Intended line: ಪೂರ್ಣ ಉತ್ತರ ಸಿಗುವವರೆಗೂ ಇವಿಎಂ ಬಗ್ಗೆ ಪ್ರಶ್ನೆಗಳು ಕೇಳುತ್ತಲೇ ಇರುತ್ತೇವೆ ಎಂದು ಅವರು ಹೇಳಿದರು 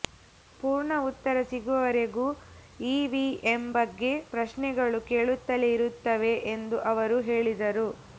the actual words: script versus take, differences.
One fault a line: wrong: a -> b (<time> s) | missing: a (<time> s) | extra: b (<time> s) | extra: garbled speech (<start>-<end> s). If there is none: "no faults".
no faults